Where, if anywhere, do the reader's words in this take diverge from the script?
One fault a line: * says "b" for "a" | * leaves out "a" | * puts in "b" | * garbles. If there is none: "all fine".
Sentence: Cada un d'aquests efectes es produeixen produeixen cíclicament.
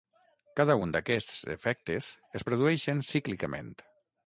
* leaves out "produeixen"